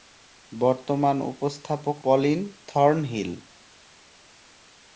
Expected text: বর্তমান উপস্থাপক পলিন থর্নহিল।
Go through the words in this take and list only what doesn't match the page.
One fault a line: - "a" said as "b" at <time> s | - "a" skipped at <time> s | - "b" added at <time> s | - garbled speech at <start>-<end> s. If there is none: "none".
none